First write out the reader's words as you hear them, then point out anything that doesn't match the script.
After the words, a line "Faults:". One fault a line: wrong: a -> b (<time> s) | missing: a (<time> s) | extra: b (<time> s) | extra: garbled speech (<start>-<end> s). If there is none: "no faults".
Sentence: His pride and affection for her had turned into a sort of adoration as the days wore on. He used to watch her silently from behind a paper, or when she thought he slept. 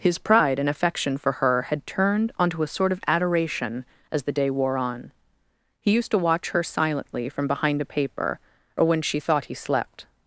His pride and affection for her had turned onto a sort of adoration as the day wore on. He used to watch her silently from behind a paper, or when she thought he slept.
Faults:
wrong: into -> onto (2.4 s)
wrong: days -> day (4.3 s)